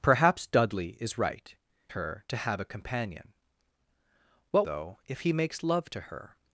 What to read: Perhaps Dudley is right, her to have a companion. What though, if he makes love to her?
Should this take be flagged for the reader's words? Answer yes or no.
no